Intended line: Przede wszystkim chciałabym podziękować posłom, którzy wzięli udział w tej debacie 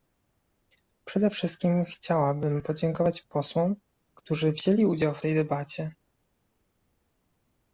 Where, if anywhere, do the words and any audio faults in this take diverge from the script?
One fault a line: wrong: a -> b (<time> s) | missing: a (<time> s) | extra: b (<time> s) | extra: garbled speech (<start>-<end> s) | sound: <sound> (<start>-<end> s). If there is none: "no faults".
no faults